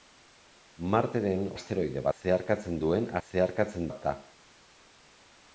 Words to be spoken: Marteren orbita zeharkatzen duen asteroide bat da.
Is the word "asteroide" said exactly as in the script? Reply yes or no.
no